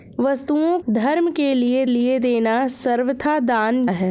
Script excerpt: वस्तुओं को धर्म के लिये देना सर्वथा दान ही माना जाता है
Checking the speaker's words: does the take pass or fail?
fail